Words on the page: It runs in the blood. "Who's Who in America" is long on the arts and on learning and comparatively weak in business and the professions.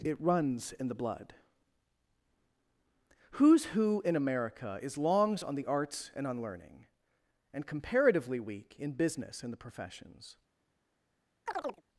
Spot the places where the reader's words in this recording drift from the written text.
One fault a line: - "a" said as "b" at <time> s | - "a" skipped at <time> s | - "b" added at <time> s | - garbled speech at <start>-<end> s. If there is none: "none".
- "long" said as "longs" at 5.0 s